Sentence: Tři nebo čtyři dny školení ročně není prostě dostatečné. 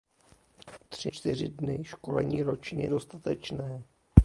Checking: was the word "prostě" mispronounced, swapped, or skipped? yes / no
yes